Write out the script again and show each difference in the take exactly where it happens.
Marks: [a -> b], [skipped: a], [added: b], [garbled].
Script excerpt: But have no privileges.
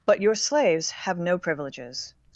But [added: your slaves] have no privileges.